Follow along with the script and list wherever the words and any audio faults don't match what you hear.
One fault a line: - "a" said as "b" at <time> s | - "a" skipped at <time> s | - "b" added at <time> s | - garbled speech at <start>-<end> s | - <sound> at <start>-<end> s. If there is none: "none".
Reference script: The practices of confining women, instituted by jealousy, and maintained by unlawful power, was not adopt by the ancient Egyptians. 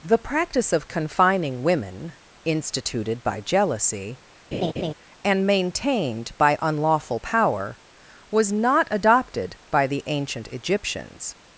- "practices" said as "practice" at 0.2 s
- laugh at 4.5-4.9 s
- "adopt" said as "adopted" at 8.9 s